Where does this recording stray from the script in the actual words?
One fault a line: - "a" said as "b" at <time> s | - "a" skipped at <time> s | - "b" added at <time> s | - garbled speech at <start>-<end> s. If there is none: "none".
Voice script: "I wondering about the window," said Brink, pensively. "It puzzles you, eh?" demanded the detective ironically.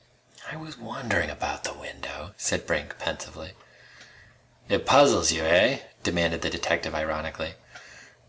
- "was" added at 0.6 s